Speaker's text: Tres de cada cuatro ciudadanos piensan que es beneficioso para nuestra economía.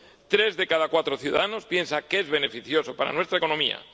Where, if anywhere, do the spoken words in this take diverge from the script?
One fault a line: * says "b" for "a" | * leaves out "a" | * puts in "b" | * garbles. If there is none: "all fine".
all fine